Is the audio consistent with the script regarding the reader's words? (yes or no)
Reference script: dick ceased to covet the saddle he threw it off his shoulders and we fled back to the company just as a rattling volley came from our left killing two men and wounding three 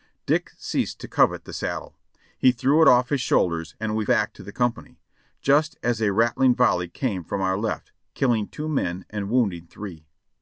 no